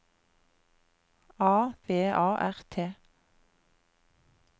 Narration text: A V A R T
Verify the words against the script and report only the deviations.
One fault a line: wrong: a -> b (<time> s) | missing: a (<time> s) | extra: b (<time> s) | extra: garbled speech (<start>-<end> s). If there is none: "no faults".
no faults